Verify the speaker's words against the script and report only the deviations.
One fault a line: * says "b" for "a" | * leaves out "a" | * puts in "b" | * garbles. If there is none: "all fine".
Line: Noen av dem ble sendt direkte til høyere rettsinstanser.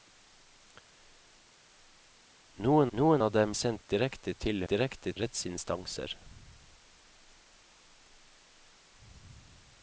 * puts in "noen"
* leaves out "ble"
* says "direkte" for "høyere"